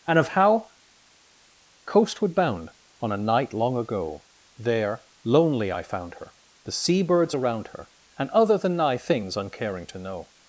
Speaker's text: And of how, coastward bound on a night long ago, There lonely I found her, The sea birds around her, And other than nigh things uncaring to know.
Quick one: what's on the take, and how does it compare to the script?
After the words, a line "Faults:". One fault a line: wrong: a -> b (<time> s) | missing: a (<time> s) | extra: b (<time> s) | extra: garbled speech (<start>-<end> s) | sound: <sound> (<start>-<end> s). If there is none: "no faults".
And of how, coastward bound on a night long ago, There lonely I found her, The sea birds around her, And other than nigh things uncaring to know.
Faults:
no faults